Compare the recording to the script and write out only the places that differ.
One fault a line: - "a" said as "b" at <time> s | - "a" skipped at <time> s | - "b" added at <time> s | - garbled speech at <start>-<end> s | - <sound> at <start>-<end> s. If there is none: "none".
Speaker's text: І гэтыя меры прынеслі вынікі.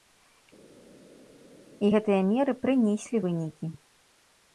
none